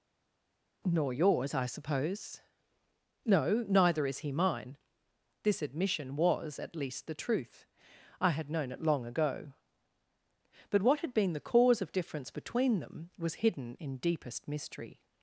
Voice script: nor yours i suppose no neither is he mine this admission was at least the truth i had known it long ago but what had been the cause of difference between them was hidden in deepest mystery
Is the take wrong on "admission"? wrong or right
right